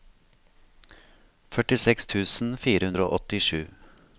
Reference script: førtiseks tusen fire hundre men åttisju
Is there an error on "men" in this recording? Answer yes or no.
yes